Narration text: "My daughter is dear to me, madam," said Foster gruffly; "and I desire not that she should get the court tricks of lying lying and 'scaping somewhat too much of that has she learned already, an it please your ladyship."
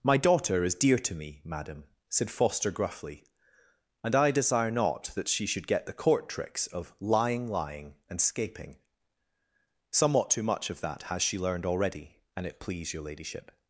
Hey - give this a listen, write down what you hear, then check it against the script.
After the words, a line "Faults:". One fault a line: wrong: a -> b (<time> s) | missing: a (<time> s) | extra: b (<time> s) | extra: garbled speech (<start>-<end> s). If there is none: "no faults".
"My daughter is dear to me, madam," said Foster gruffly; "and I desire not that she should get the court tricks of lying lying and 'scaping somewhat too much of that has she learned already, an it please your ladyship."
Faults:
no faults